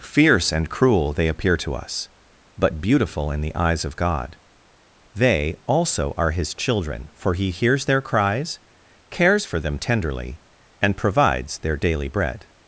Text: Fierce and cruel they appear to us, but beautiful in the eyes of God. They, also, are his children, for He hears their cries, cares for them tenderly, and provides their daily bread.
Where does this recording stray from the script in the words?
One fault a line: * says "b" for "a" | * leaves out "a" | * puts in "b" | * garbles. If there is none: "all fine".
all fine